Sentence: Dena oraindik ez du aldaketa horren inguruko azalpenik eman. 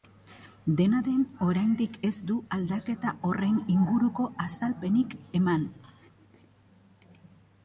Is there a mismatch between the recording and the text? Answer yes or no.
yes